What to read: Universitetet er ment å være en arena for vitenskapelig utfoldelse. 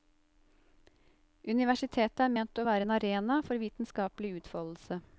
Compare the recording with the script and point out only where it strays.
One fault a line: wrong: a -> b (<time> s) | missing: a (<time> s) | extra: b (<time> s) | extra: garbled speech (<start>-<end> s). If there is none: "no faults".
no faults